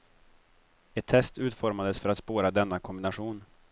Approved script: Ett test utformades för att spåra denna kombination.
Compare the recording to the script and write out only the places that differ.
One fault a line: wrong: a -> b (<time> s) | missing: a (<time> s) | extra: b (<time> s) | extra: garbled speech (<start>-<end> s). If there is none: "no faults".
no faults